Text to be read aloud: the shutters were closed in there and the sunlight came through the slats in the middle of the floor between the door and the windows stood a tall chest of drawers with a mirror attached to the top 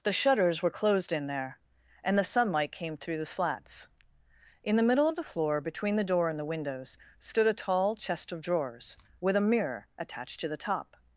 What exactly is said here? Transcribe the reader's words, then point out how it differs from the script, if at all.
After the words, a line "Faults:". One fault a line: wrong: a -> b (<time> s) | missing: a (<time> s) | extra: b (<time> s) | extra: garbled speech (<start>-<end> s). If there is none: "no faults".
the shutters were closed in there and the sunlight came through the slats in the middle of the floor between the door and the windows stood a tall chest of drawers with a mirror attached to the top
Faults:
no faults